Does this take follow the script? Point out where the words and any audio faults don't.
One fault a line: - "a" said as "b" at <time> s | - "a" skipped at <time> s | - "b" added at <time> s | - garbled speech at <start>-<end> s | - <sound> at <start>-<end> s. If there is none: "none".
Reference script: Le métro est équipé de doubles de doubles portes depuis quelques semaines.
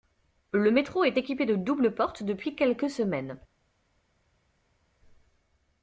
- "de doubles" skipped at 1.9 s